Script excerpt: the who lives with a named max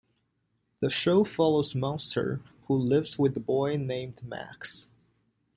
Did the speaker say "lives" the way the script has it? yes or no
yes